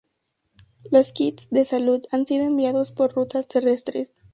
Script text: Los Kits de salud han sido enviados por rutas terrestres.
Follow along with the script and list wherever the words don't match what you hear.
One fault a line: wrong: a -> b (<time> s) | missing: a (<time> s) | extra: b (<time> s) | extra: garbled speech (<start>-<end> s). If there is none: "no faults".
no faults